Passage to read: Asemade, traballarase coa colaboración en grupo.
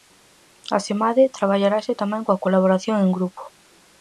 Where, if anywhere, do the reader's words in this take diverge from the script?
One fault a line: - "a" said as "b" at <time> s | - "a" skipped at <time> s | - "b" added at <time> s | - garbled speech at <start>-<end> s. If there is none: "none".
- "tamén" added at 2.0 s